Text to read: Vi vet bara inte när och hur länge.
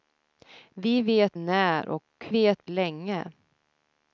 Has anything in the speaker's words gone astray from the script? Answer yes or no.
yes